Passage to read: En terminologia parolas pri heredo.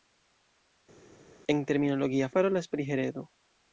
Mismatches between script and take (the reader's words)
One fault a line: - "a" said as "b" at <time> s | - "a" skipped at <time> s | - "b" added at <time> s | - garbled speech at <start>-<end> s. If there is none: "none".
none